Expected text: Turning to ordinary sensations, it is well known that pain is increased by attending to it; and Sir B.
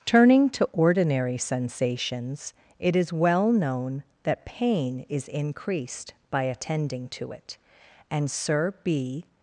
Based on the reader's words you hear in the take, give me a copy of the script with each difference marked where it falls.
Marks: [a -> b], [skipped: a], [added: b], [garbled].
Turning to ordinary sensations, it is well known that pain is increased by attending to it; and Sir B.